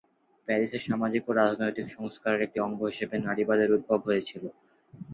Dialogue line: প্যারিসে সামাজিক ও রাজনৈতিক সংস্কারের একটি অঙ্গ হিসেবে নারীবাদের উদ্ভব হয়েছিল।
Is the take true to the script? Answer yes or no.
yes